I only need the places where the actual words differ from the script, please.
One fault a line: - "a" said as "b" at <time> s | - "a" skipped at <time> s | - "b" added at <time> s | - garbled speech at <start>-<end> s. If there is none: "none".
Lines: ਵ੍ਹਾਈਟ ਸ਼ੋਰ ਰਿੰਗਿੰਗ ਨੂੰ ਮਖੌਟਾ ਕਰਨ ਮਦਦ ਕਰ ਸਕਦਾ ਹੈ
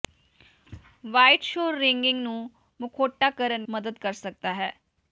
none